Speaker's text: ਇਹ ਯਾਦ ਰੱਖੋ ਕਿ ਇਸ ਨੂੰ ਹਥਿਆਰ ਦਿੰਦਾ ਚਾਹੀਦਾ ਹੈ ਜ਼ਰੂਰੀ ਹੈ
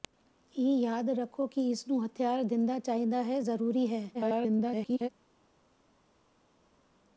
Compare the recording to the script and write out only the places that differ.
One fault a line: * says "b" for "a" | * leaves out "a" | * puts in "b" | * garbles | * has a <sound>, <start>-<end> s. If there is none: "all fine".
* garbles